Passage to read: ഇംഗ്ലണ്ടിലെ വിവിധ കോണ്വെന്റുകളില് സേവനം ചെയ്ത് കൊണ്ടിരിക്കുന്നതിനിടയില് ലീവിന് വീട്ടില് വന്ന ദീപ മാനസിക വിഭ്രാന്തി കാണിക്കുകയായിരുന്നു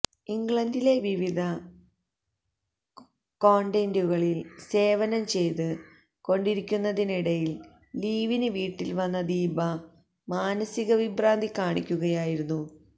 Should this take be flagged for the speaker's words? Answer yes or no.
no